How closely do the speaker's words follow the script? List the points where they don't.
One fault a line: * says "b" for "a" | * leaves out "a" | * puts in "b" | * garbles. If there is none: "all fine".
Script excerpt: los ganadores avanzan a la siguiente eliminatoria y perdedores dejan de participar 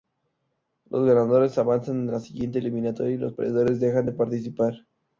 * puts in "los"